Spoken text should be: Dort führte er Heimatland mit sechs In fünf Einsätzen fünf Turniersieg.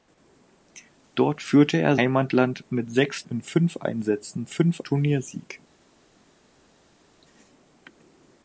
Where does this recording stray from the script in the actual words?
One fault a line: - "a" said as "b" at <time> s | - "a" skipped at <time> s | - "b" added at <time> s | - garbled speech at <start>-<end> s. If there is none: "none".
none